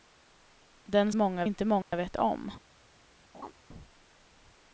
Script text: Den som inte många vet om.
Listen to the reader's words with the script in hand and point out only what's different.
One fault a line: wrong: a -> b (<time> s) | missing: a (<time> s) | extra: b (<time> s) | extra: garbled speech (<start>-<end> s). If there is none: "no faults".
wrong: som -> många (1.1 s)